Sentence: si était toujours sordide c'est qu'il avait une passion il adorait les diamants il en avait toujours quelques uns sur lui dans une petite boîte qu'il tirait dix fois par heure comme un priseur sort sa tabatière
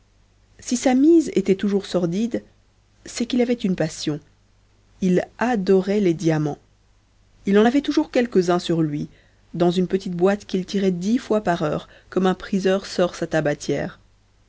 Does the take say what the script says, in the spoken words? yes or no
no